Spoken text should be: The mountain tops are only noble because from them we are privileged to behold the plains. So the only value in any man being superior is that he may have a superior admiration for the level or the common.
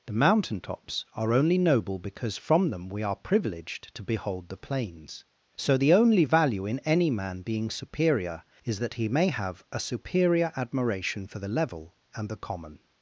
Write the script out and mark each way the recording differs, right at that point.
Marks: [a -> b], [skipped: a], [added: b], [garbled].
The mountain tops are only noble because from them we are privileged to behold the plains. So the only value in any man being superior is that he may have a superior admiration for the level [or -> and] the common.